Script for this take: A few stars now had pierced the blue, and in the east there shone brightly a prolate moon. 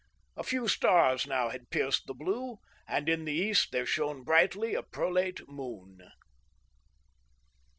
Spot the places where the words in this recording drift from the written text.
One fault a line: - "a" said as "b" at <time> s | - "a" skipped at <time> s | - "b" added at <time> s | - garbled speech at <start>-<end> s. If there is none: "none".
none